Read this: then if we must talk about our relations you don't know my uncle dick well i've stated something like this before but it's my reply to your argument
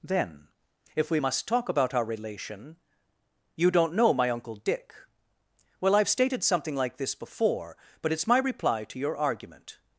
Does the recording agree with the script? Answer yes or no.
no